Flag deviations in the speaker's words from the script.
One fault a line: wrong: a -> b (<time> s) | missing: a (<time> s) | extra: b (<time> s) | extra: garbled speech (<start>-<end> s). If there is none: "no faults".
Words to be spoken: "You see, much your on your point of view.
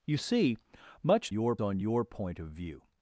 no faults